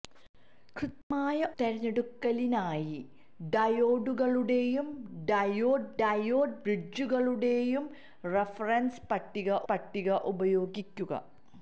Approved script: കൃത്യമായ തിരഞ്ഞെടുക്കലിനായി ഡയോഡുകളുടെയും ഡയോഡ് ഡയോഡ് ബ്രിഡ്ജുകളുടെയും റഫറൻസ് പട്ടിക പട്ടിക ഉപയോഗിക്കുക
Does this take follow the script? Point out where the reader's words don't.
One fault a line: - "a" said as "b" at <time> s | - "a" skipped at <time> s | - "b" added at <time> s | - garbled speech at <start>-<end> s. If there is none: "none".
none